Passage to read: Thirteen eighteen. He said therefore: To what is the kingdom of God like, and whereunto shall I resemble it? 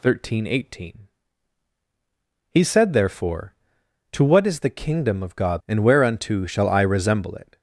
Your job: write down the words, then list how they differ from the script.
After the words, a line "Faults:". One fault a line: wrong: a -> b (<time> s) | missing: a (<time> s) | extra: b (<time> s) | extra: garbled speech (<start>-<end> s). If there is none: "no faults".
Thirteen eighteen. He said therefore: To what is the kingdom of God and whereunto shall I resemble it?
Faults:
missing: like (5.6 s)